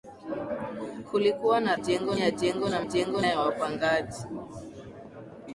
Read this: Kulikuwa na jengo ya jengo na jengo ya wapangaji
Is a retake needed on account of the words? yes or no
no